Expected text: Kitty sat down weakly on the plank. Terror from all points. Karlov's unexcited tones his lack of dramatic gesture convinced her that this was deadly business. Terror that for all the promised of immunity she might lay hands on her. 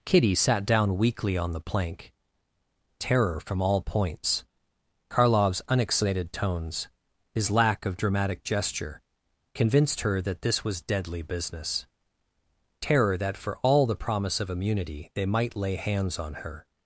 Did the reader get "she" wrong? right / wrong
wrong